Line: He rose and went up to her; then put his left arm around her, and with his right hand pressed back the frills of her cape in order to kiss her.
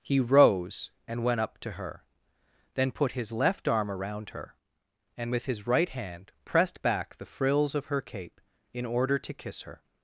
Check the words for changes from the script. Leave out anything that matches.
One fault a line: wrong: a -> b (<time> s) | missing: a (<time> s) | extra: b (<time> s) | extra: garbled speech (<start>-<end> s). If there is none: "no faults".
no faults